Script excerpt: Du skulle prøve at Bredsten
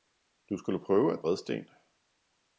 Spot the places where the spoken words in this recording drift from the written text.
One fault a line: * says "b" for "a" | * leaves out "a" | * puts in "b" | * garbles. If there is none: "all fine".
all fine